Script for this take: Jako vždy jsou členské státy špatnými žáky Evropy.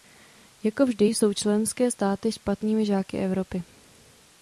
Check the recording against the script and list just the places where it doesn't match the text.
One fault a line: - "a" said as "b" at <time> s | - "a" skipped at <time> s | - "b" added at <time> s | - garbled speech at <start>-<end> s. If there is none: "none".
none